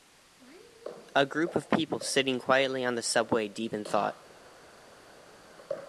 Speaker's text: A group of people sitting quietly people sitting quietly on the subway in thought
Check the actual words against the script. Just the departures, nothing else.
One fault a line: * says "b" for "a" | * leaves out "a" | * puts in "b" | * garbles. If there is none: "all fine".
* leaves out "people sitting quietly"
* puts in "deep"